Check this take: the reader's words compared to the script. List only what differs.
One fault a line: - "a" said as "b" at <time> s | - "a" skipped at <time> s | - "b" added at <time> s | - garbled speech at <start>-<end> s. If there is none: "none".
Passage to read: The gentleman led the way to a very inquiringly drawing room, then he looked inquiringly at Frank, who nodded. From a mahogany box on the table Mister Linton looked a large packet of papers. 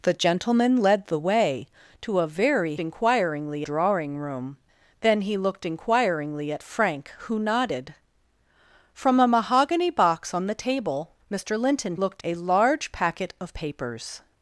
none